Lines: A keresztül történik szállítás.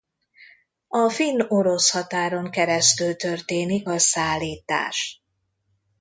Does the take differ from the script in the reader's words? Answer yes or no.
yes